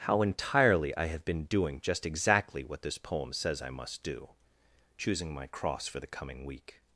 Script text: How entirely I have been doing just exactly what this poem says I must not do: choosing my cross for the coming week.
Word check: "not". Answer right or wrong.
wrong